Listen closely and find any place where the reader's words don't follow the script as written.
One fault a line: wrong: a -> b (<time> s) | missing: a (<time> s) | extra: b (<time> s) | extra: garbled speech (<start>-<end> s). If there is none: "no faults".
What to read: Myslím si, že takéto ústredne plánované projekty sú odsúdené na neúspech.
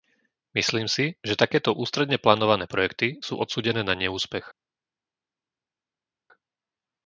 no faults